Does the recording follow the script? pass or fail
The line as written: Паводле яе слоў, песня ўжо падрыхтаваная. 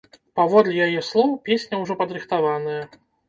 pass